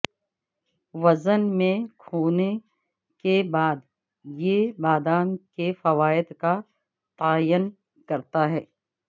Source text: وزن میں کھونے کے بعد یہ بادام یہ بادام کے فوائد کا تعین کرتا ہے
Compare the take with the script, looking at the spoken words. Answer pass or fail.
fail